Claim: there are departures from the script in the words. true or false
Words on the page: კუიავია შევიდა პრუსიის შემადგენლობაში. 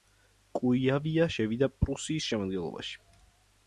false